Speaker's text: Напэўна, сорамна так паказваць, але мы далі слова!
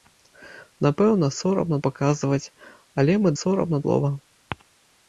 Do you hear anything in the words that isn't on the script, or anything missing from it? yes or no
yes